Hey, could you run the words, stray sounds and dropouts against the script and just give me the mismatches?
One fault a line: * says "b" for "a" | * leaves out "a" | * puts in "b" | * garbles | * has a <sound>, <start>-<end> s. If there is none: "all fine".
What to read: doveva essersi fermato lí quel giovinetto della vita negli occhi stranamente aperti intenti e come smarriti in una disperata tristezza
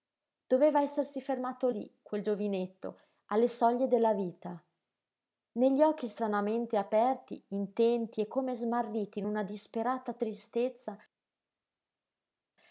* puts in "alle soglie"